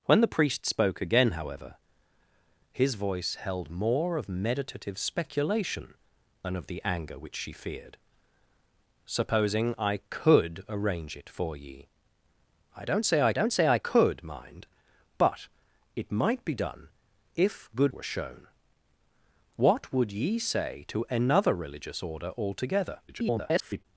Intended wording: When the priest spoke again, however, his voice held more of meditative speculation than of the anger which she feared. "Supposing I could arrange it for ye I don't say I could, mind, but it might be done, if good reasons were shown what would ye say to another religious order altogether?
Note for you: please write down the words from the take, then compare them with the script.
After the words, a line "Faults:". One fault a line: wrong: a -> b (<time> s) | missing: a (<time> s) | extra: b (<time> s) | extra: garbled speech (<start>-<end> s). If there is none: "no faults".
When the priest spoke again, however, his voice held more of meditative speculation than of the anger which she feared. "Supposing I could arrange it for ye I don't say I don't say I could, mind, but it might be done, if good were shown what would ye say to another religious order altogether? [garbled]
Faults:
extra: don't say I (13.3 s)
missing: reasons (17.9 s)
extra: garbled speech (23.1-23.8 s)